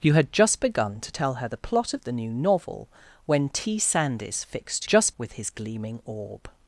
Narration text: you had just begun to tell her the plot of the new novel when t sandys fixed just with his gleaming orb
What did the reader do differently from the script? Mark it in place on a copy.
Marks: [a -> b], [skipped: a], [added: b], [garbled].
you had just begun to tell her the plot of the new novel when t sandys fixed just with his gleaming orb